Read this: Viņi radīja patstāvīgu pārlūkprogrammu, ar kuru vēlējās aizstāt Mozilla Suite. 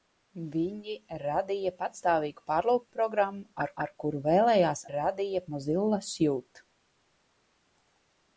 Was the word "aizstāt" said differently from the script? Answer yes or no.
yes